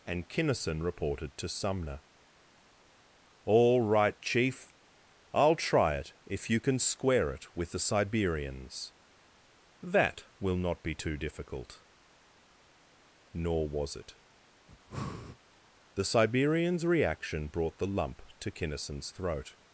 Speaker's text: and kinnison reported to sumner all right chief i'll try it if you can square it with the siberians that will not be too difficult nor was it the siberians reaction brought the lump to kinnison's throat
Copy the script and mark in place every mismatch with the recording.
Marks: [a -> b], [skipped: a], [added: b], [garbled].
and kinnison reported to sumner all right chief i'll try it if you can square it with the siberians that will not be too difficult nor was it the siberians reaction brought the lump to kinnison's throat